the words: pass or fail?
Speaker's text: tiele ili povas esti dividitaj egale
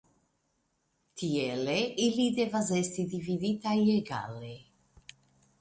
fail